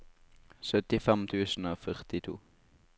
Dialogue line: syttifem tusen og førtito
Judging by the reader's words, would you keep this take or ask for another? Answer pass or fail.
pass